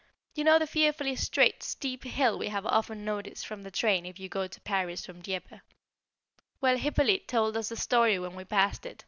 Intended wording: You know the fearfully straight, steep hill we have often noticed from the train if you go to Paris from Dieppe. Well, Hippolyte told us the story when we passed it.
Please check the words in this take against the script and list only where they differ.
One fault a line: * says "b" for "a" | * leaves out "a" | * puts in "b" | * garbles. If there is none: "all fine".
all fine